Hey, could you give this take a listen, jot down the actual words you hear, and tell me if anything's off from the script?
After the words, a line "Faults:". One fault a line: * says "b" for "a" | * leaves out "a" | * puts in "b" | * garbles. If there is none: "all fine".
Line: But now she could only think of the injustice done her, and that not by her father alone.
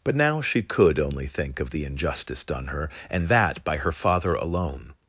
But now she could only think of the injustice done her, and that by her father alone.
Faults:
* leaves out "not"